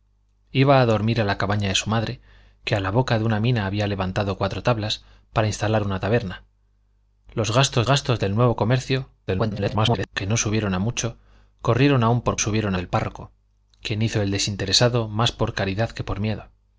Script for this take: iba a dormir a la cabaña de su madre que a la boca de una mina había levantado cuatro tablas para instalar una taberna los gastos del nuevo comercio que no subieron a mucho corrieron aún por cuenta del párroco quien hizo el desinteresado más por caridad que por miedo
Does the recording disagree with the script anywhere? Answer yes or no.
yes